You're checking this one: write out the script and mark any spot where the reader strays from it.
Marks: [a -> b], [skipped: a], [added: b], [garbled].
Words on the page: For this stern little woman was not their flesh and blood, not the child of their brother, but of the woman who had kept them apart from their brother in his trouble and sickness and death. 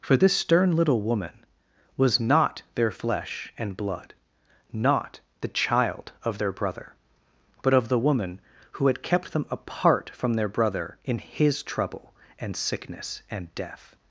For this stern little woman was not their flesh and blood, not the child of their brother, but of the woman who had kept them apart from their brother in his trouble and sickness and death.